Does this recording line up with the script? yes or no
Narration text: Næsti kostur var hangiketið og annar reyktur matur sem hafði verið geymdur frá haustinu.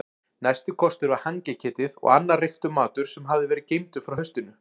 yes